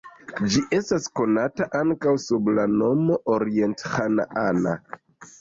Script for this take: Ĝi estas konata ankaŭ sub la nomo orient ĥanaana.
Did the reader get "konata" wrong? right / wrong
right